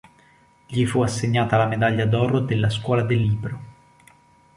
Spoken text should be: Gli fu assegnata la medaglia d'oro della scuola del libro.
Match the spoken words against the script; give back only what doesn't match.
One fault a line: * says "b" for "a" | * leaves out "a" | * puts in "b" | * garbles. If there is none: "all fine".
all fine